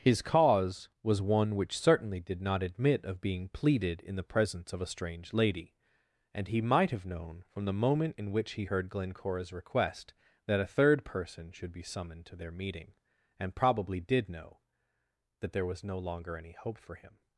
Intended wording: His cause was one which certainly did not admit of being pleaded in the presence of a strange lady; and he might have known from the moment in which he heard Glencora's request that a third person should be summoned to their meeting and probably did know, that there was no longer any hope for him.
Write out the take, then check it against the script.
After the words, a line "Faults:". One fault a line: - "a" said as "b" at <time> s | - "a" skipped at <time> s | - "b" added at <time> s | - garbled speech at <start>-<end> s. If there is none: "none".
His cause was one which certainly did not admit of being pleaded in the presence of a strange lady; and he might have known from the moment in which he heard Glencora's request that a third person should be summoned to their meeting and probably did know, that there was no longer any hope for him.
Faults:
none